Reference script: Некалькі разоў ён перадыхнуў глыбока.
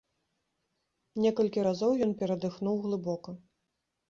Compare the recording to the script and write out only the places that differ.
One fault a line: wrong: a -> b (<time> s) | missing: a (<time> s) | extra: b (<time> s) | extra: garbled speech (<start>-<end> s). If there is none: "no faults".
no faults